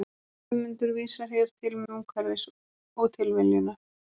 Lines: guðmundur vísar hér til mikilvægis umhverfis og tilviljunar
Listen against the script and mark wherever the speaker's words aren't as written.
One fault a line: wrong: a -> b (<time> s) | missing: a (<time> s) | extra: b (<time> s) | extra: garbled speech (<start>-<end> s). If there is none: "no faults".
missing: mikilvægis (1.8 s)